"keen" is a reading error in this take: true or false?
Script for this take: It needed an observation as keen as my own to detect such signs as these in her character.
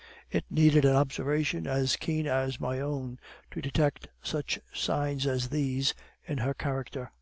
false